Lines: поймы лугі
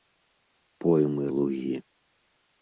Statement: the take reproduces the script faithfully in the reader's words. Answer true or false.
true